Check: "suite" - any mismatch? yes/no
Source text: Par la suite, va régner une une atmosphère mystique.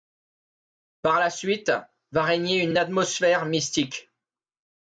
no